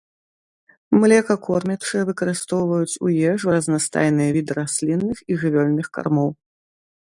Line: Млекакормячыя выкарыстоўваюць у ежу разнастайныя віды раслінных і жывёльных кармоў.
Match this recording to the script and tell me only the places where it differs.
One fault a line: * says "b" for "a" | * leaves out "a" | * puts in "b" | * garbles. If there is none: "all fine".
all fine